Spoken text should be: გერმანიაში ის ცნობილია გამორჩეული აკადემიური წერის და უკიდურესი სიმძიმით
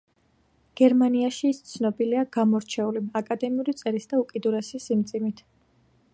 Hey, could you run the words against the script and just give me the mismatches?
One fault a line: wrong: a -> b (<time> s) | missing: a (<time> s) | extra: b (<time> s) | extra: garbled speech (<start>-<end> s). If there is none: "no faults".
no faults